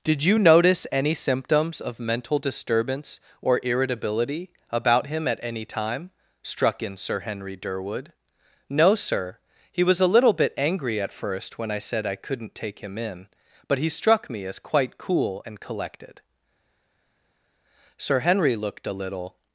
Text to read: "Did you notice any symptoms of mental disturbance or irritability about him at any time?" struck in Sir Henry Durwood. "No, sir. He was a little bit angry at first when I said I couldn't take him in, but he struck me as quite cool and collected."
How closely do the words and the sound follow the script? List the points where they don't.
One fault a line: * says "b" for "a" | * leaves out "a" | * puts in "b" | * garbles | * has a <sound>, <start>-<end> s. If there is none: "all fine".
* puts in "Sir Henry looked a little"